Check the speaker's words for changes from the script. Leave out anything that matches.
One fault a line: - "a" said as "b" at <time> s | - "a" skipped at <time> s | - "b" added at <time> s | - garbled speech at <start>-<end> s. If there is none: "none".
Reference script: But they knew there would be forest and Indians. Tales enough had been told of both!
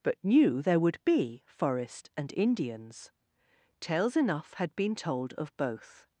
- "they" skipped at 0.2 s